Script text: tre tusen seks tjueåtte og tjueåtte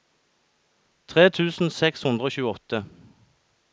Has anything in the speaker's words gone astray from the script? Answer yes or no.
yes